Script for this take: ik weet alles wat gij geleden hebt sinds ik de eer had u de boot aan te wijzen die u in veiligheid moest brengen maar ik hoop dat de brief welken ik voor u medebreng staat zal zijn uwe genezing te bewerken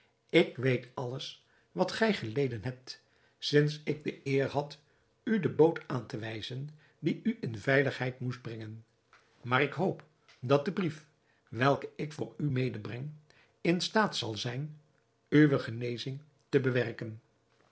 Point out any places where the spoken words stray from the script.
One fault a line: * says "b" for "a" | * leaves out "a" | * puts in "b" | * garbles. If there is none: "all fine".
* puts in "in"